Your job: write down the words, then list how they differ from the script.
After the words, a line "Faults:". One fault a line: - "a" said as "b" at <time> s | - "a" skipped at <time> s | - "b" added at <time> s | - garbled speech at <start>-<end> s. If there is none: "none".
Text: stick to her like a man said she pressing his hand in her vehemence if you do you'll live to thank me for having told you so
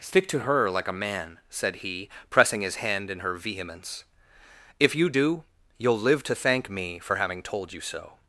stick to her like a man said he pressing his hand in her vehemence if you do you'll live to thank me for having told you so
Faults:
- "she" said as "he" at 1.8 s